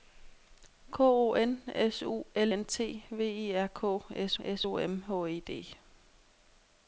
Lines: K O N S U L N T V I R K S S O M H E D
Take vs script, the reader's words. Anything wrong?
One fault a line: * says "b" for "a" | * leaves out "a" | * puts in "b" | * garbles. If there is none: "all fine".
all fine